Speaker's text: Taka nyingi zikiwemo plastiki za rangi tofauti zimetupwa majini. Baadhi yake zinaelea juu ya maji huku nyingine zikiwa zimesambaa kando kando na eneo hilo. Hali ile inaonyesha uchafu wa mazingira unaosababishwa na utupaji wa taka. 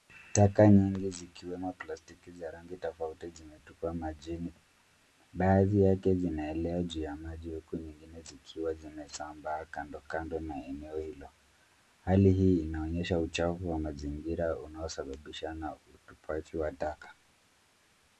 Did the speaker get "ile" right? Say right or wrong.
wrong